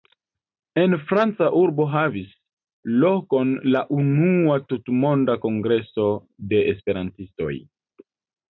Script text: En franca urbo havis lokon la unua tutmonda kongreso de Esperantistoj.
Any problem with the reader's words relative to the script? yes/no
no